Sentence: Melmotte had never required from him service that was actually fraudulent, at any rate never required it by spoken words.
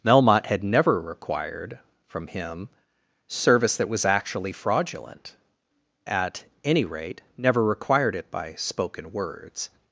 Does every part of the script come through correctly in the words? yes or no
yes